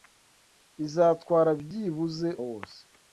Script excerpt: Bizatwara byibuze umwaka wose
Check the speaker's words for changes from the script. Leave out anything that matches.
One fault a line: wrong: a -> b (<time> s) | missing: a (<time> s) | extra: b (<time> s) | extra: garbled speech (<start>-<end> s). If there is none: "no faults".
missing: umwaka (2.3 s)